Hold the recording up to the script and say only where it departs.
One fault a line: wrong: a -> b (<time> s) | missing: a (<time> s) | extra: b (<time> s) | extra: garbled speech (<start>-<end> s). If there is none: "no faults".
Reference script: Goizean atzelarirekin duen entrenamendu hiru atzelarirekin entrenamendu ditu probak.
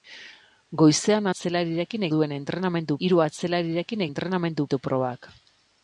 no faults